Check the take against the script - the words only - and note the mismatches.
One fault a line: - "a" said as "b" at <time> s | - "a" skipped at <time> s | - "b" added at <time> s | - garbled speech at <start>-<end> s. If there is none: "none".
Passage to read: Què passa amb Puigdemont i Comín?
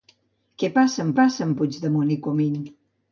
- "passa amb" added at 1.2 s